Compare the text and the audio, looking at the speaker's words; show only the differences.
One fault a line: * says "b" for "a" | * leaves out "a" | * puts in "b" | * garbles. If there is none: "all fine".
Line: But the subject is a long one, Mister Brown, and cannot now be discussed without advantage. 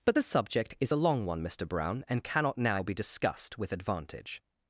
* says "with" for "without"